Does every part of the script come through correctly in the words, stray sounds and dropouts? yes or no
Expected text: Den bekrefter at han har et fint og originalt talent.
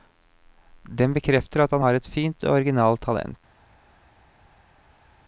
yes